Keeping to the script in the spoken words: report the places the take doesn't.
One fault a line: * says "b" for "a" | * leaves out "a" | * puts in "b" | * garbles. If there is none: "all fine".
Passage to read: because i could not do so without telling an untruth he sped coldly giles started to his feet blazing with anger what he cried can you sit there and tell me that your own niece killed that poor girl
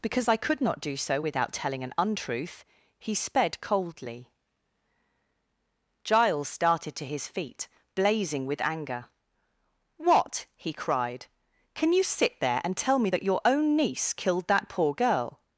all fine